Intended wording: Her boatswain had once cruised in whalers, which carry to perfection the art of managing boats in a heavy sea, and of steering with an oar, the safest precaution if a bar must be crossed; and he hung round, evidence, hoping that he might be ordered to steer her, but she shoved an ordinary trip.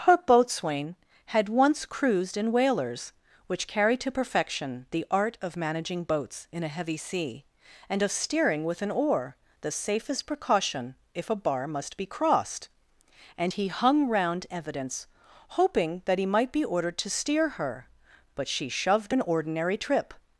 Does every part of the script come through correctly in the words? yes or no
yes